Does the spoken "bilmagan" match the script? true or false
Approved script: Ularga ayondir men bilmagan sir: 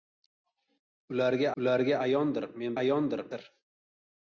false